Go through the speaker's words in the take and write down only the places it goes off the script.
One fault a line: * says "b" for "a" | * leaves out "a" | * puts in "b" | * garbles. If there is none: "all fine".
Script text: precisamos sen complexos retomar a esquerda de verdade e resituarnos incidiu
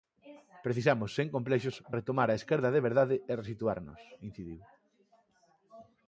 all fine